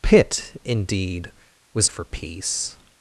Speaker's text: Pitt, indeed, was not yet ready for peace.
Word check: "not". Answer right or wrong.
wrong